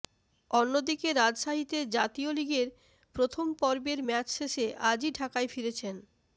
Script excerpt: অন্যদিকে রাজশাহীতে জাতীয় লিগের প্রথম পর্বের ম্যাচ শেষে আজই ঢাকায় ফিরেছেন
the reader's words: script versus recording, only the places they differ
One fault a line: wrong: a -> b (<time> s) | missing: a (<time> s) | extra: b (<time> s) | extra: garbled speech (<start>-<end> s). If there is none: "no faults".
no faults